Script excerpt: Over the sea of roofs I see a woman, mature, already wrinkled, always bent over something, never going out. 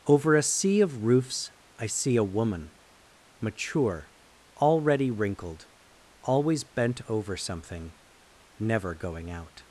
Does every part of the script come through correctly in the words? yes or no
no